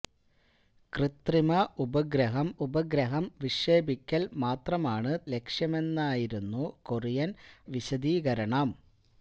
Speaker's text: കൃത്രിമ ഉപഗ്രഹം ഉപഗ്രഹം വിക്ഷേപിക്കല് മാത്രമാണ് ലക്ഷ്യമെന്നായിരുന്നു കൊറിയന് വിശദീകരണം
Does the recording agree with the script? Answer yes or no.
yes